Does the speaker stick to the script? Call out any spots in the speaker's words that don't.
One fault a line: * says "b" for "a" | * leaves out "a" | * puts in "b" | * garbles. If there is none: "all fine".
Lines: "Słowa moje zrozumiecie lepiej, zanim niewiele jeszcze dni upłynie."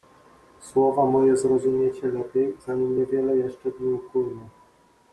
all fine